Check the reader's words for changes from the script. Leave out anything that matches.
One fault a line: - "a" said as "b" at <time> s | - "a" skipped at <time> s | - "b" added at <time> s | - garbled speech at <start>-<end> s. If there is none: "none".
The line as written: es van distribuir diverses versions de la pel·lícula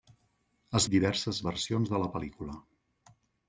- "van distribuir" skipped at 0.9 s